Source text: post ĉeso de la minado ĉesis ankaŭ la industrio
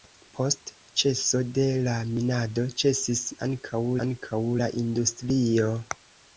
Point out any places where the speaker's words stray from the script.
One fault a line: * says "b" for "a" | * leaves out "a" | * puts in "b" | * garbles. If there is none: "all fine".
* puts in "ankaŭ"